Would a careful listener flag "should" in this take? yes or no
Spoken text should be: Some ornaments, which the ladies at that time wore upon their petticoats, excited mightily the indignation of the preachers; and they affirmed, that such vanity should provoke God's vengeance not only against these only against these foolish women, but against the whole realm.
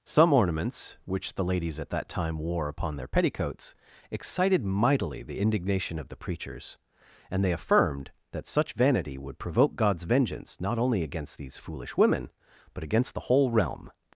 yes